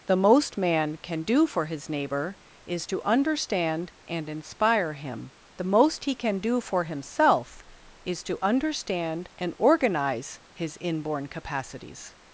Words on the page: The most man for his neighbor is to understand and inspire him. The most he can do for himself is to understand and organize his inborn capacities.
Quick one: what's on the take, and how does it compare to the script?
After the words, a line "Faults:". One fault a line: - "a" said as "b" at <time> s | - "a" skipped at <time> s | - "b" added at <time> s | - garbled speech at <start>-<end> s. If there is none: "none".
The most man can do for his neighbor is to understand and inspire him. The most he can do for himself is to understand and organize his inborn capacities.
Faults:
- "can do" added at 1.0 s